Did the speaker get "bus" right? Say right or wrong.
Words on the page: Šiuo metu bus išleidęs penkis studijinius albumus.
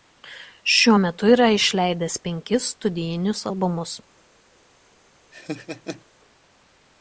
wrong